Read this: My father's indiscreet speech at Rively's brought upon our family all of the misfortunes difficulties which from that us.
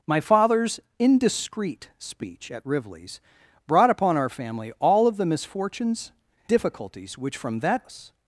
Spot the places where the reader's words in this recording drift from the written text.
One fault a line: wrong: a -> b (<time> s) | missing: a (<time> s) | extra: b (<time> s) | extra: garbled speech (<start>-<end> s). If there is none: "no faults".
no faults